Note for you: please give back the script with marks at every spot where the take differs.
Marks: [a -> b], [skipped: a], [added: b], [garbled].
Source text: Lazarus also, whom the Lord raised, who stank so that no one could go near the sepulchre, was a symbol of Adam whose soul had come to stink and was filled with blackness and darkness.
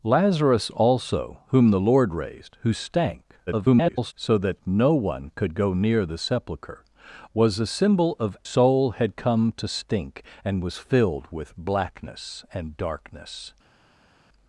Lazarus also, whom the Lord raised, who stank [garbled] so that no one could go near the sepulchre, was a symbol of [skipped: Adam whose] soul had come to stink and was filled with blackness and darkness.